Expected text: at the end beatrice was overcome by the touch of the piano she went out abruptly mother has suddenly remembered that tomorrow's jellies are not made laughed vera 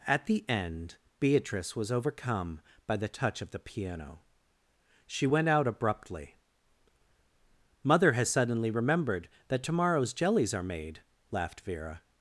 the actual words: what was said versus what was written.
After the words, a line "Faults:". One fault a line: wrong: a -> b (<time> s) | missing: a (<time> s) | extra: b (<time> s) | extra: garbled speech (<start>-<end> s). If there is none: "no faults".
at the end beatrice was overcome by the touch of the piano she went out abruptly mother has suddenly remembered that tomorrow's jellies are made laughed vera
Faults:
missing: not (10.6 s)